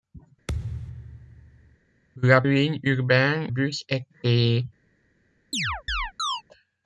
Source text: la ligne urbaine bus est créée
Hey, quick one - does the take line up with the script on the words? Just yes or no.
yes